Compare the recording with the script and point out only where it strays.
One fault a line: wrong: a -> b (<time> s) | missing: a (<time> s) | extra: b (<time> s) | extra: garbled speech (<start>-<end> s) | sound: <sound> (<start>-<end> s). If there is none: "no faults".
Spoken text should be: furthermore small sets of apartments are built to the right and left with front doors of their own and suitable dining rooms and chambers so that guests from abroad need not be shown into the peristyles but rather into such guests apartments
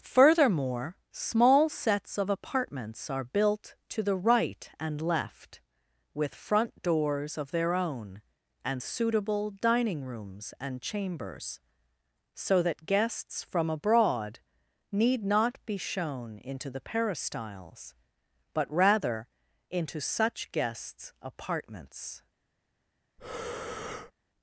sound: breath (23.2-24.1 s)